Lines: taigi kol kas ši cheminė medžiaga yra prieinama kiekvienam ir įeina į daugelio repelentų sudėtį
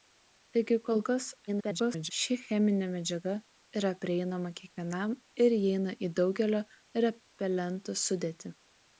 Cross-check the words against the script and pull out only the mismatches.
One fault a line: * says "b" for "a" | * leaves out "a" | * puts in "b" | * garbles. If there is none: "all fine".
* garbles